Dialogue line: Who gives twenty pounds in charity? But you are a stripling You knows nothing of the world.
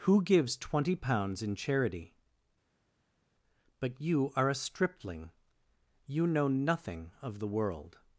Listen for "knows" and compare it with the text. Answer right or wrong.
wrong